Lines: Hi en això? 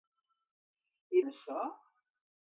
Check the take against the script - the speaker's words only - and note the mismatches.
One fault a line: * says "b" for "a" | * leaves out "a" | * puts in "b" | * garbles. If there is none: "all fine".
all fine